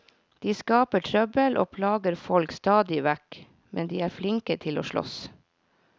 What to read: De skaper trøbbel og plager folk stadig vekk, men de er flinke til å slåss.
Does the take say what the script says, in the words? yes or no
yes